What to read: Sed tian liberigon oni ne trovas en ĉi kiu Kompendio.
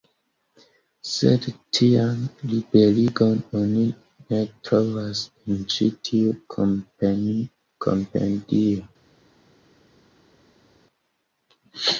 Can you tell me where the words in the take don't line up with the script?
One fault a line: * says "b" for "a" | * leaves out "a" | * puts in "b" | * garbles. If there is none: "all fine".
* says "tiu" for "kiu"